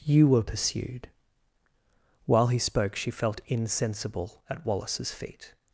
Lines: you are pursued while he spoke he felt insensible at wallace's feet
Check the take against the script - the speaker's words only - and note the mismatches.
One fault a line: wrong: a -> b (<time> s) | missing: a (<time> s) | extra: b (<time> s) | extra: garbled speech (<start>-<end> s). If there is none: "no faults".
wrong: are -> were (0.3 s)
wrong: he -> she (3.0 s)